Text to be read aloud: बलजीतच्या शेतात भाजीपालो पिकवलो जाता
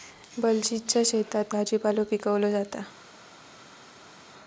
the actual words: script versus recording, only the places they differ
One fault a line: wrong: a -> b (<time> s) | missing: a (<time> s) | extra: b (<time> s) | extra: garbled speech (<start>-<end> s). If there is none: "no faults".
no faults